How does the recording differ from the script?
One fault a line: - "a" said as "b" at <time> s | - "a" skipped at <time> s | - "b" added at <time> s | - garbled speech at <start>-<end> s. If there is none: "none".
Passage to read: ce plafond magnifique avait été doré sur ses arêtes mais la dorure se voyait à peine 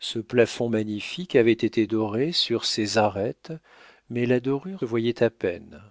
- "se" skipped at 4.8 s